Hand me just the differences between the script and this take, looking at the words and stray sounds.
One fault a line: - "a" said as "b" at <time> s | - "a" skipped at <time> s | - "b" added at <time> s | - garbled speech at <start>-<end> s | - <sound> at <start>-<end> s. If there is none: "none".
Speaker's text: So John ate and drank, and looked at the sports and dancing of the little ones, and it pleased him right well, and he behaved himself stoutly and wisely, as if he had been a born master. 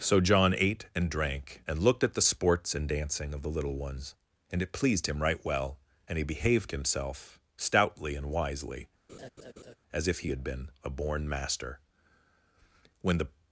- laugh at 9.1-9.8 s
- "When the" added at 13.0 s